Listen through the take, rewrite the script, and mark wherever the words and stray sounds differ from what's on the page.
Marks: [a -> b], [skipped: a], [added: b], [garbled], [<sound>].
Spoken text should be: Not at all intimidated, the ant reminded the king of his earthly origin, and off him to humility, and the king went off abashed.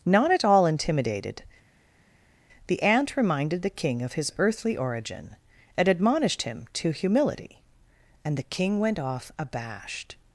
Not at all intimidated, the ant reminded the king of his earthly origin, and [off -> admonished] him to humility, and the king went off abashed.